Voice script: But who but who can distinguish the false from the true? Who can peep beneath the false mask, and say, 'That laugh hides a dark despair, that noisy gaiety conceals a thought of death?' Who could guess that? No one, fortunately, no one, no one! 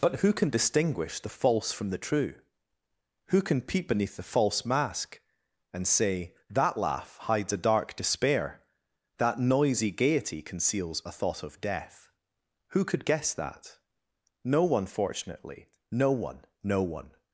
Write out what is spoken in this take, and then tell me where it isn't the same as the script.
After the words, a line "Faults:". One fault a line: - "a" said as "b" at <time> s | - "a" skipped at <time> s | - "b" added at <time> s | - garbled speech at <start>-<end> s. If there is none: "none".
But who can distinguish the false from the true? Who can peep beneath the false mask, and say, 'That laugh hides a dark despair, that noisy gaiety conceals a thought of death?' Who could guess that? No one, fortunately, no one, no one!
Faults:
- "but who" skipped at 0.3 s